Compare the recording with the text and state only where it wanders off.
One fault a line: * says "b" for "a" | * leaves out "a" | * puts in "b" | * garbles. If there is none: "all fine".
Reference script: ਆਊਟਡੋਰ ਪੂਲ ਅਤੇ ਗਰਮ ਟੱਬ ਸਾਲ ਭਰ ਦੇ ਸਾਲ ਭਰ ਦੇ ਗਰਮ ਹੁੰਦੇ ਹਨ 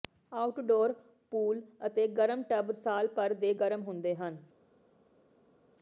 * leaves out "ਸਾਲ ਭਰ ਦੇ"